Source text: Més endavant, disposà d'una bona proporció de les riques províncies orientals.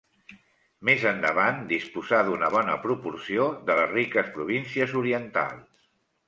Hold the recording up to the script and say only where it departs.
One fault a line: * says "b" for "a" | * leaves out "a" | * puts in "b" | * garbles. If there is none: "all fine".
all fine